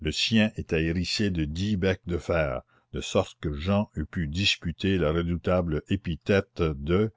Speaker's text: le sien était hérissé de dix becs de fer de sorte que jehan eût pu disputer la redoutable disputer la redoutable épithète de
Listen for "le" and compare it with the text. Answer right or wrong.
right